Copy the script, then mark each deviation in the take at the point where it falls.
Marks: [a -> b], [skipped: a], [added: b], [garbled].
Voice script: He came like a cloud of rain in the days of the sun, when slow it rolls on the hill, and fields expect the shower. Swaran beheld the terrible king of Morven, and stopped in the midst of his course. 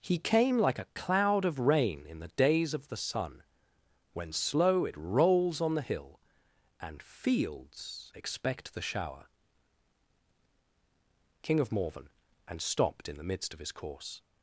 He came like a cloud of rain in the days of the sun, when slow it rolls on the hill, and fields expect the shower. [skipped: Swaran beheld the terrible] king of Morven, and stopped in the midst of his course.